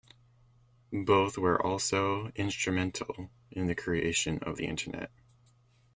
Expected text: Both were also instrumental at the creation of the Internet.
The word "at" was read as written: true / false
false